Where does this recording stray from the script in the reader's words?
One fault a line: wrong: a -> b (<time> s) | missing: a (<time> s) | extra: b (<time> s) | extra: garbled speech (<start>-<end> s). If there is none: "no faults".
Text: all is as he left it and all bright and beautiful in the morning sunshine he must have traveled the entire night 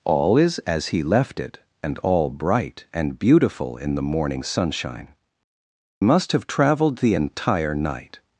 missing: he (5.1 s)